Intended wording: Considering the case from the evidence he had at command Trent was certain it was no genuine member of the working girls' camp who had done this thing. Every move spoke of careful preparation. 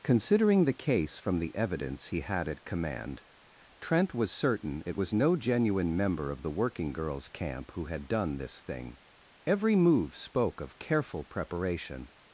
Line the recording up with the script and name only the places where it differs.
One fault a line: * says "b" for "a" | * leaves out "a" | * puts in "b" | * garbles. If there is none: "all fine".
all fine